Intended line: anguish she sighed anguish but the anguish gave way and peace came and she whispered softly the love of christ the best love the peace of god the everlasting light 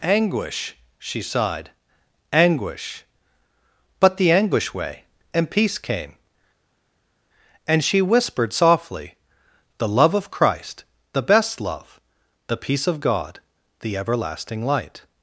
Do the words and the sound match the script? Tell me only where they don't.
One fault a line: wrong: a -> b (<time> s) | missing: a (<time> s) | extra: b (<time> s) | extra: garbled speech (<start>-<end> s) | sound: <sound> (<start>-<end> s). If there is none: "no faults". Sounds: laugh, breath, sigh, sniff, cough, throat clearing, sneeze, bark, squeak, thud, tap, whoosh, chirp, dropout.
missing: gave (4.7 s)